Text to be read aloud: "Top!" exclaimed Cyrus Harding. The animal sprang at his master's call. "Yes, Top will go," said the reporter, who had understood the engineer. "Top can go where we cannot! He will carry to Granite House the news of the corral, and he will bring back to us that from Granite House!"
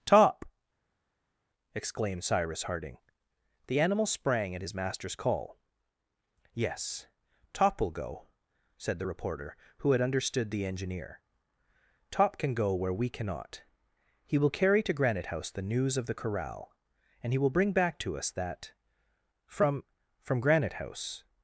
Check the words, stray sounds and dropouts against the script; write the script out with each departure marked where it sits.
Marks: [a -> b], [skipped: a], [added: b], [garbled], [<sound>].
"Top!" exclaimed Cyrus Harding. The animal sprang at his master's call. "Yes, Top will go," said the reporter, who had understood the engineer. "Top can go where we cannot! He will carry to Granite House the news of the corral, and he will bring back to us that from [added: from] Granite House!"